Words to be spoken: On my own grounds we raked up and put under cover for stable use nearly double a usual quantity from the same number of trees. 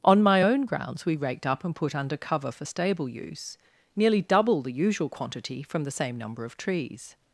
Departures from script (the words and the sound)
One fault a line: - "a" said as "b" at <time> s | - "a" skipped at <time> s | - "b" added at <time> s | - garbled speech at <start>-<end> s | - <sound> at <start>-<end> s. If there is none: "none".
- "a" said as "the" at 4.6 s